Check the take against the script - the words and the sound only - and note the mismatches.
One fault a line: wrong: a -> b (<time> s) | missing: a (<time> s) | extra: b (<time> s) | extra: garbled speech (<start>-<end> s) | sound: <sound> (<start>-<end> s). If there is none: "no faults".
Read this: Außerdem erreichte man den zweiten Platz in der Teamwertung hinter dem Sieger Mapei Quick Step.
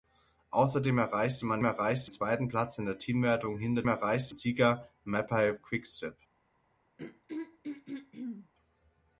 wrong: den -> erreichte (1.6 s)
wrong: dem -> erreichte (3.9 s)
sound: throat clearing (7.0-8.5 s)